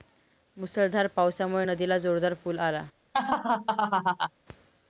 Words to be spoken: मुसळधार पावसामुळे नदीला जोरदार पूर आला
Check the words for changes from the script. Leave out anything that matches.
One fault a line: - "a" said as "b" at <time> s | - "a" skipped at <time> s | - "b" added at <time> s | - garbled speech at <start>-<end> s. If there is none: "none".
none